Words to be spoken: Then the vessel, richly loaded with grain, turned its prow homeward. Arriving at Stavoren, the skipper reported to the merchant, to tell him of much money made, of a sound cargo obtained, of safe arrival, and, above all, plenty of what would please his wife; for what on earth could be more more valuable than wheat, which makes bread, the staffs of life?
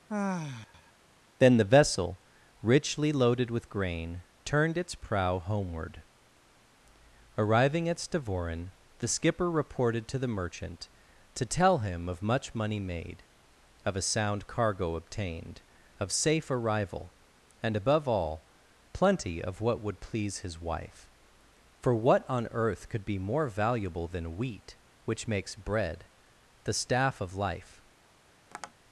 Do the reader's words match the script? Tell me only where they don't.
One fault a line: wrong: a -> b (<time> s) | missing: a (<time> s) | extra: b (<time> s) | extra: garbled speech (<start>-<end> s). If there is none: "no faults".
missing: more (23.5 s)
wrong: staffs -> staff (26.7 s)